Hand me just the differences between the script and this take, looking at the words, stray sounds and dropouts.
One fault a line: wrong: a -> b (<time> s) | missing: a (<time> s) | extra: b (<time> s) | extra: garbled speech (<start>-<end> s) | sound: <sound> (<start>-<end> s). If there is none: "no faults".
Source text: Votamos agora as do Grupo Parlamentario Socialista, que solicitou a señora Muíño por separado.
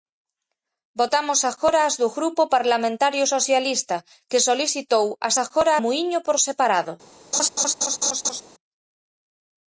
wrong: señora -> agora (5.4 s)
sound: laugh (7.3-8.4 s)